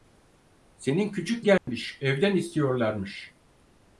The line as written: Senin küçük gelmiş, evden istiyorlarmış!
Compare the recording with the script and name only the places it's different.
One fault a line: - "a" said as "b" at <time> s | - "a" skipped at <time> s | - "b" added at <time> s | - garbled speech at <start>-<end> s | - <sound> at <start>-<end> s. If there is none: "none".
- dropout at 1.6-1.7 s